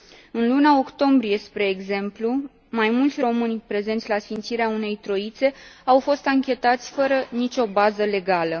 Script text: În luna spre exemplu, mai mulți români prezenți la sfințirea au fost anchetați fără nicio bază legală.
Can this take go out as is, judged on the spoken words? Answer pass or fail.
fail